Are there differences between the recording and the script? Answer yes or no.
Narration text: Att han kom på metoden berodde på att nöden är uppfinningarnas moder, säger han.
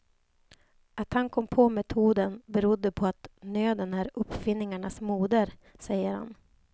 no